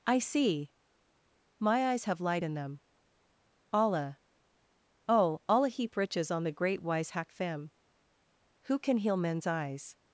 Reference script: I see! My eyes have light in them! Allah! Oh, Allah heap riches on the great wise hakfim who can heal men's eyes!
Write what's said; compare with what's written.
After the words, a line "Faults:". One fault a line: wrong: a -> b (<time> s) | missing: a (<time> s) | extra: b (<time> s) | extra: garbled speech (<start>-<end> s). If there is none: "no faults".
I see! My eyes have light in them! Allah! Oh, Allah heap riches on the great wise hakfim who can heal men's eyes!
Faults:
no faults